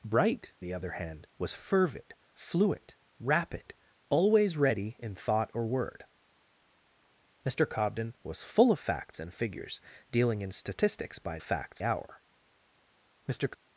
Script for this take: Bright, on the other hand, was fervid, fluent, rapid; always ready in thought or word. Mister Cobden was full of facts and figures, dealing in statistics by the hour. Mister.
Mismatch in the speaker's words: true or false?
true